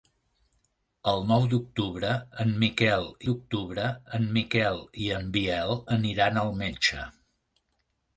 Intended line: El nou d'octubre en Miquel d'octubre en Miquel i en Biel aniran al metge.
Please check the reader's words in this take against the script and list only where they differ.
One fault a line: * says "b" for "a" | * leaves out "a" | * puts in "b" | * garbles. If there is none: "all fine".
all fine